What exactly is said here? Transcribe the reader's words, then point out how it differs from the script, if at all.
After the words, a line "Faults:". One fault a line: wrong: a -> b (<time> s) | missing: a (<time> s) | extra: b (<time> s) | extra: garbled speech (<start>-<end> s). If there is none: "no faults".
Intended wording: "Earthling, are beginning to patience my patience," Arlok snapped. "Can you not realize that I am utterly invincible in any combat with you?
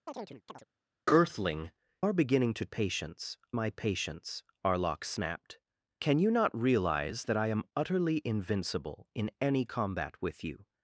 "Earthling, are beginning to patience my patience," Arlok snapped. "Can you not realize that I am utterly invincible in any combat with you?
Faults:
no faults